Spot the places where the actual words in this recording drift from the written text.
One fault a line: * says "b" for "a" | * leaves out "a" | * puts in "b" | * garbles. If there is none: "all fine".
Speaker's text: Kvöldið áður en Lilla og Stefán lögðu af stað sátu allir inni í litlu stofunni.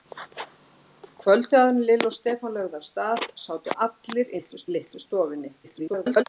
* says "litlu" for "inni"
* garbles